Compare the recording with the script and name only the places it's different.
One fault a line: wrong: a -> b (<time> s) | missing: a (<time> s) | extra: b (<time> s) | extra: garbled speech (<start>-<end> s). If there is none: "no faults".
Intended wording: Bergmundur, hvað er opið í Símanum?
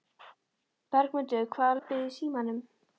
no faults